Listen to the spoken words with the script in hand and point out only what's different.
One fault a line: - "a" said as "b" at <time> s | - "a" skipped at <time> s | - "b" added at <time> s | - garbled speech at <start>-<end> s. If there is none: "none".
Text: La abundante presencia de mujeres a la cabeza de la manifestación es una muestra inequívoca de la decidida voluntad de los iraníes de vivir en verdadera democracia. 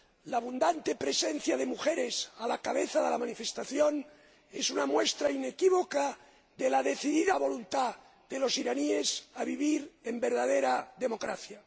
none